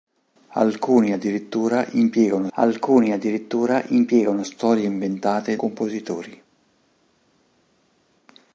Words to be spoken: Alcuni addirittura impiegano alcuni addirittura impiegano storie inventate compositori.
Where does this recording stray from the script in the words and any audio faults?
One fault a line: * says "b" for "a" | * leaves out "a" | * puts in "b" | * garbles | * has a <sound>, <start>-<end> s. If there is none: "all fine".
all fine